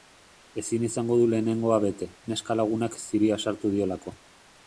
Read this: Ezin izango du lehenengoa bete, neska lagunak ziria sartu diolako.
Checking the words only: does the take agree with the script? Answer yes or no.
yes